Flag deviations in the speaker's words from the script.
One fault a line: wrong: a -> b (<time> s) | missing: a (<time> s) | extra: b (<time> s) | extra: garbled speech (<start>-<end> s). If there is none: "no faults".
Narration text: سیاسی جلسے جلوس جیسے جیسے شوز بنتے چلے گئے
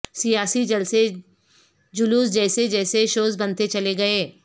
no faults